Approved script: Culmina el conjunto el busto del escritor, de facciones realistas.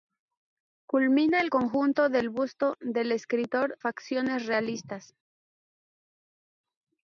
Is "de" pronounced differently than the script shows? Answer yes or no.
yes